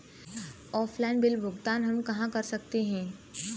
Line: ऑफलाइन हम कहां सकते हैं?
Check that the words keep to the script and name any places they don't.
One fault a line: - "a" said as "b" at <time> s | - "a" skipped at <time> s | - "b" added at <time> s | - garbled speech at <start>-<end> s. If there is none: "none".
- "बिल भुगतान" added at 1.2 s
- "कर" added at 2.3 s